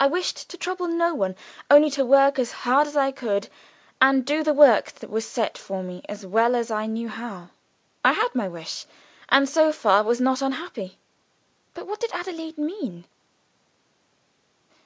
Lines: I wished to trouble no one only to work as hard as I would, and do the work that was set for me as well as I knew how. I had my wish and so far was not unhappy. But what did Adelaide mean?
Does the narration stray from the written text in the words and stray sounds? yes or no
yes